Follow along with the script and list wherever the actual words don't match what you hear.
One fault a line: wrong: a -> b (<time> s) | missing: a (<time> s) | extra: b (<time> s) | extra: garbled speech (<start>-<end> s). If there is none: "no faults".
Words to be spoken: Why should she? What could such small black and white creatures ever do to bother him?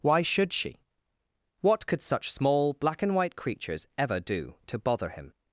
no faults